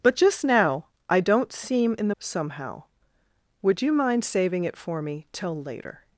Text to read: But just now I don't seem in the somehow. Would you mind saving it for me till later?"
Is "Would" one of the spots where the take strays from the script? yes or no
no